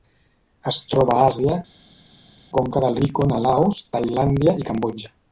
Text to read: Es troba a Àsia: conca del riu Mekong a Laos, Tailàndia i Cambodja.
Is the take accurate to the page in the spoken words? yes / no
no